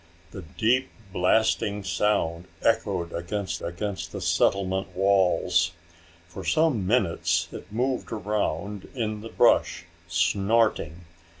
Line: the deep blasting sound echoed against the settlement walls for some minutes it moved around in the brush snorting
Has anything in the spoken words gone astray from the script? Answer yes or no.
yes